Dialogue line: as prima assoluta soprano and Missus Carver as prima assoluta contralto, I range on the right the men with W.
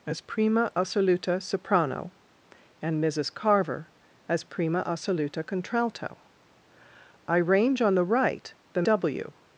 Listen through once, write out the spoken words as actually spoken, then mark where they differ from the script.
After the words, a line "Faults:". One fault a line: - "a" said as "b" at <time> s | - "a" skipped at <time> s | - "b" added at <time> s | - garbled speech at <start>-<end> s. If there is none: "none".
as prima assoluta soprano and Missus Carver as prima assoluta contralto, I range on the right the W.
Faults:
- "men with" skipped at 8.8 s